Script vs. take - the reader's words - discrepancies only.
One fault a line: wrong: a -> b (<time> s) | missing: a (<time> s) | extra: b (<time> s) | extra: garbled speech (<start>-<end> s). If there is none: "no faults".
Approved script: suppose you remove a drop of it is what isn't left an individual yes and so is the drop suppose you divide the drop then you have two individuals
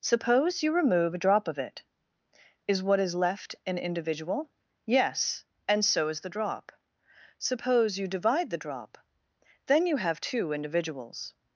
wrong: isn't -> is (3.0 s)